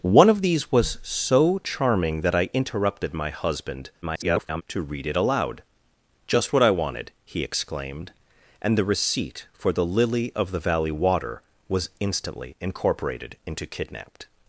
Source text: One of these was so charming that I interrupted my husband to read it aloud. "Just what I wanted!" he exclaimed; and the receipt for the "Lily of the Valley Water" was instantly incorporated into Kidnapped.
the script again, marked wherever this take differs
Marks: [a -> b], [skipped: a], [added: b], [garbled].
One of these was so charming that I interrupted my husband [garbled] to read it aloud. "Just what I wanted!" he exclaimed; and the receipt for the "Lily of the Valley Water" was instantly incorporated into Kidnapped.